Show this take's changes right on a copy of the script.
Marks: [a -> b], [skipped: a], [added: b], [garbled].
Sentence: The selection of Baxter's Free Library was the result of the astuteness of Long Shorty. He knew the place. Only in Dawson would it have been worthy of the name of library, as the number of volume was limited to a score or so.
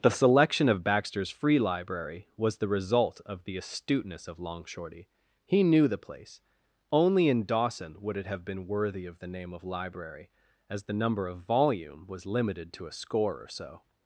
The selection of Baxter's Free Library was the result of the astuteness of Long Shorty. He knew the place. Only in Dawson would it have been worthy of the name of library, as the number of volume was limited to a score or so.